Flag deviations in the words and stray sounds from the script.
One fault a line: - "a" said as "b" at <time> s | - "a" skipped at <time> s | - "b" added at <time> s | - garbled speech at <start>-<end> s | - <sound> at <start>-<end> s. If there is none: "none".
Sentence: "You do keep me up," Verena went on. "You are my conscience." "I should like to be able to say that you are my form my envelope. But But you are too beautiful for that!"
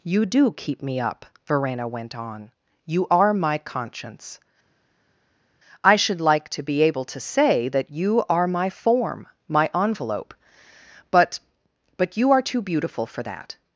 none